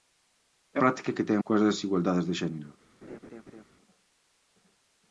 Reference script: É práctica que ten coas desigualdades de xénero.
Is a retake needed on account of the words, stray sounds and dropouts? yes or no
yes